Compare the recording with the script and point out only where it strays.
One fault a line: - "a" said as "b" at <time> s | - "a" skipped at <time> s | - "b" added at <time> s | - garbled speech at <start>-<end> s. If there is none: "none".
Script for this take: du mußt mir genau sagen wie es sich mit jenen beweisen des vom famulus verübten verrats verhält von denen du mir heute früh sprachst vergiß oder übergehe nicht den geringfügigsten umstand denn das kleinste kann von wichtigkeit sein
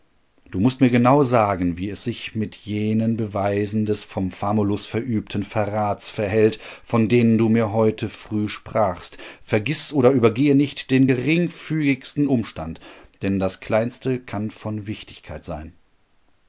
none